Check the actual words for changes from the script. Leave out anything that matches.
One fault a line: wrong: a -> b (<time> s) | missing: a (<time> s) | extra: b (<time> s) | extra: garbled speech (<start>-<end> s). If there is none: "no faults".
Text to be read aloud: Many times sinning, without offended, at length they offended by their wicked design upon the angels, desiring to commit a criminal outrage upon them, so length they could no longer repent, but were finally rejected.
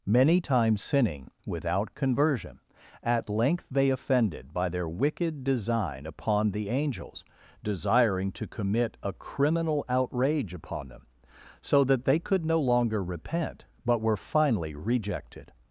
wrong: offended -> conversion (1.9 s)
wrong: length -> that (11.8 s)